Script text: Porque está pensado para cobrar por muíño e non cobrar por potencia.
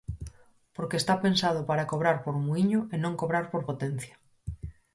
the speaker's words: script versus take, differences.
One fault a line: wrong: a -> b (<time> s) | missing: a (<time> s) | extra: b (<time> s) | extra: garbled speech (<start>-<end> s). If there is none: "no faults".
no faults